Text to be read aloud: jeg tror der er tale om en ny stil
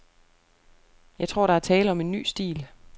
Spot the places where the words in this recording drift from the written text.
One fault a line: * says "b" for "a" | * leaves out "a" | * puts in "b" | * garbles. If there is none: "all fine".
all fine